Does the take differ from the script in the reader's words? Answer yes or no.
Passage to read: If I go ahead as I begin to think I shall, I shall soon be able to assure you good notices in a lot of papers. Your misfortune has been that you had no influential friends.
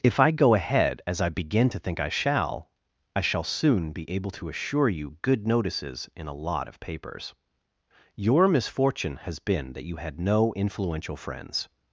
no